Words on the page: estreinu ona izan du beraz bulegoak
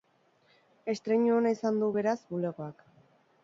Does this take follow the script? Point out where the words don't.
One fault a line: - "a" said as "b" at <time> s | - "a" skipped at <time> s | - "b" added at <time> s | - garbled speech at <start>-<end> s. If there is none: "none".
none